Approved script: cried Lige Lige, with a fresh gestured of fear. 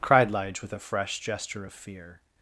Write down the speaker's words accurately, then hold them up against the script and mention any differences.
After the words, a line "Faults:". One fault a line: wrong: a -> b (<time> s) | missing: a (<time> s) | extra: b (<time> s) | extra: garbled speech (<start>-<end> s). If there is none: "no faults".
cried Lige, with a fresh gesture of fear.
Faults:
missing: Lige (0.6 s)
wrong: gestured -> gesture (1.2 s)